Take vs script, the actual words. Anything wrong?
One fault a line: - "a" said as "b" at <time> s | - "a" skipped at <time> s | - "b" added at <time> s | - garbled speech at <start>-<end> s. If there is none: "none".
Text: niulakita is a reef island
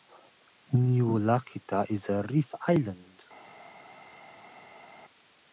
none